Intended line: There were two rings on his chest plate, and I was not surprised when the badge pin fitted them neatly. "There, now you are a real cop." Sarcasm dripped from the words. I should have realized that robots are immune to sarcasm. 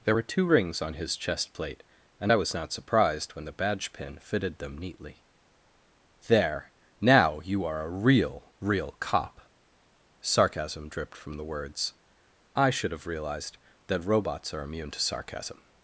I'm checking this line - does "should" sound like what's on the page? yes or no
yes